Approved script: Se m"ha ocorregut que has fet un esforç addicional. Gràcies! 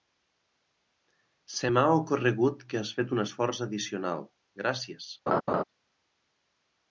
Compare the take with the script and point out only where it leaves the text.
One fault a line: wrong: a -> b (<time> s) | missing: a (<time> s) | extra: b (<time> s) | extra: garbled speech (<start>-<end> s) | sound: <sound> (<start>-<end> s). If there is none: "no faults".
sound: laugh (5.3-5.6 s)